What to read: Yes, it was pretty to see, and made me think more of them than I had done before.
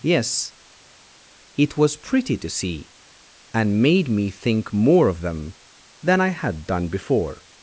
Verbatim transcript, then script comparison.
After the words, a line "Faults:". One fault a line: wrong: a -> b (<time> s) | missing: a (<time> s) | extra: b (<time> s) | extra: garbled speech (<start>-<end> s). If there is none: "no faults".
Yes, it was pretty to see, and made me think more of them than I had done before.
Faults:
no faults